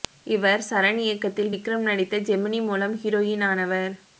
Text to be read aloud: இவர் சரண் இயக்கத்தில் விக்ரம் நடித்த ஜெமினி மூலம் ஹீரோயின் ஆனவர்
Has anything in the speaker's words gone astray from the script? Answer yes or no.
no